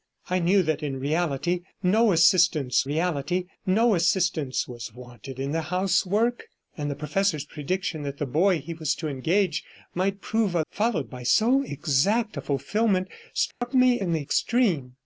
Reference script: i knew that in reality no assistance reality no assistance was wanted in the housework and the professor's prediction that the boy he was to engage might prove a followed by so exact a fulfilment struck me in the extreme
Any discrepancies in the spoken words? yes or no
no